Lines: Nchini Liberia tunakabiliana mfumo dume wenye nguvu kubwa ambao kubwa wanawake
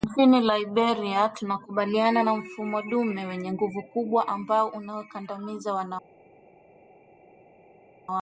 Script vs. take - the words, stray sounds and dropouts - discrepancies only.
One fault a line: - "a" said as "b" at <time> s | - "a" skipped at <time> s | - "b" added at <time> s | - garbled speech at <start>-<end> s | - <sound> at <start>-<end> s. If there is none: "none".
- "na" added at 2.2 s
- "kubwa" said as "unawakandamiza" at 4.7 s